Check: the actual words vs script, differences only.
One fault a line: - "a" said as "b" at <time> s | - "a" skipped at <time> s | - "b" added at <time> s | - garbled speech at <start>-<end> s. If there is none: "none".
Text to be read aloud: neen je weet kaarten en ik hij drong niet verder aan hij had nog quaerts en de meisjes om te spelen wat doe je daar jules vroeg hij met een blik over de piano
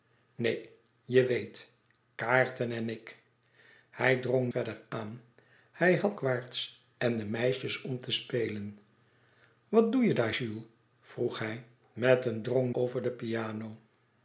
- "niet" skipped at 4.5 s
- "nog" skipped at 6.2 s
- "blik" said as "drong" at 12.4 s